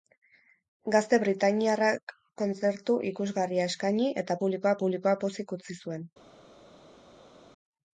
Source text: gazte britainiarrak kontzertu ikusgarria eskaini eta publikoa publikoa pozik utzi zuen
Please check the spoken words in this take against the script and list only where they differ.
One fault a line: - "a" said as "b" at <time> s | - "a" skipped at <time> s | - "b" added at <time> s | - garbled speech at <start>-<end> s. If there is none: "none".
none